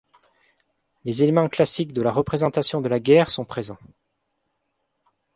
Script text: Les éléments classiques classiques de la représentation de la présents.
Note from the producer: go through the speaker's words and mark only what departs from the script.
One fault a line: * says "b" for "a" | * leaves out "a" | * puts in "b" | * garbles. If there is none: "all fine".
* leaves out "classiques"
* puts in "guerre sont"